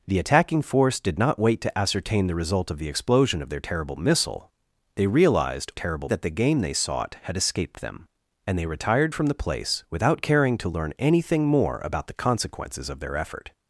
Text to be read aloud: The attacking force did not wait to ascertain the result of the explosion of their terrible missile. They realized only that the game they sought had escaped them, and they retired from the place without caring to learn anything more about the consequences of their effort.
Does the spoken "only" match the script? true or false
false